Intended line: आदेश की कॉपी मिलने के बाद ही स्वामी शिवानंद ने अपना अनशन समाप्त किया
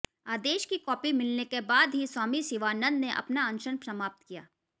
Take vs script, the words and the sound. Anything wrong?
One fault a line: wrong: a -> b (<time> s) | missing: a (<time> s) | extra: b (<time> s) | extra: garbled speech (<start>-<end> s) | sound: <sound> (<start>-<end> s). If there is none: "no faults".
no faults